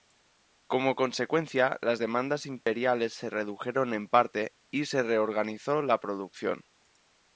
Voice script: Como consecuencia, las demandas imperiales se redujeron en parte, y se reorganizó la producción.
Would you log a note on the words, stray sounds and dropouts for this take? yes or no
yes